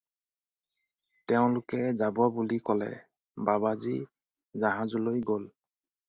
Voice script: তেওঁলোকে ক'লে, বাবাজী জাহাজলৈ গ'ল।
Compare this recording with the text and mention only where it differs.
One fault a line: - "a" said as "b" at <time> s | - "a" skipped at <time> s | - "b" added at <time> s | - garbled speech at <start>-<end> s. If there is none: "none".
- "যাব বুলি" added at 2.0 s